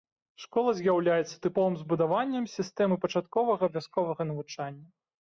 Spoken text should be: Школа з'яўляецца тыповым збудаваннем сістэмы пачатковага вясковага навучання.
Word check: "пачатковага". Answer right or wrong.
right